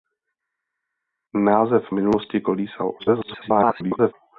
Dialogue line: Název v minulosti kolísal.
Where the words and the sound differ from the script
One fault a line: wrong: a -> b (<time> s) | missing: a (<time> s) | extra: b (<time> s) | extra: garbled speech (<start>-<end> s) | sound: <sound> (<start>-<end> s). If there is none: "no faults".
extra: garbled speech (3.0-4.1 s)